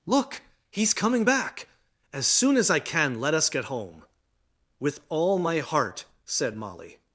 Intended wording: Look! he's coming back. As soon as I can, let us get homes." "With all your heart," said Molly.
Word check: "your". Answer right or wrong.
wrong